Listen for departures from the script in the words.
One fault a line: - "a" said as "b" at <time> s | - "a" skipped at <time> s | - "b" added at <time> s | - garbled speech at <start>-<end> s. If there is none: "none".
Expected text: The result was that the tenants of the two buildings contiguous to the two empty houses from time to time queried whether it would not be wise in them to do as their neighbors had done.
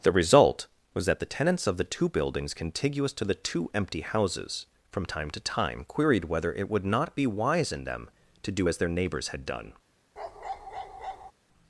none